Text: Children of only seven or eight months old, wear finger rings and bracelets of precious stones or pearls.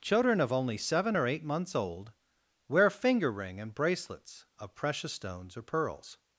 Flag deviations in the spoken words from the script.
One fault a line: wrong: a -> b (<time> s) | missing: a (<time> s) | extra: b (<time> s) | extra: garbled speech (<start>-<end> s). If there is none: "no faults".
wrong: rings -> ring (3.3 s)